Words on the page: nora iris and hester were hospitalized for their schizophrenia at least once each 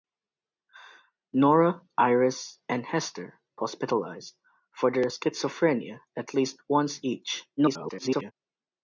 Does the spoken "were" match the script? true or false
false